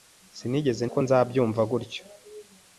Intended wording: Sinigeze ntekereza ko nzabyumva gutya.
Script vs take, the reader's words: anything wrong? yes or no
yes